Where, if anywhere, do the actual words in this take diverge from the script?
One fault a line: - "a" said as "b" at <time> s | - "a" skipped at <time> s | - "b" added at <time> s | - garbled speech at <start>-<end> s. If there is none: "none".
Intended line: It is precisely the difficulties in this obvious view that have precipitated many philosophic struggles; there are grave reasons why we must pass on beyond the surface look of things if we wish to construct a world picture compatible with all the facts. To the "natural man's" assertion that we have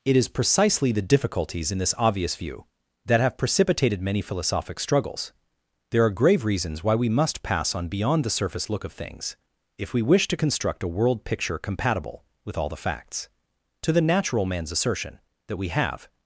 none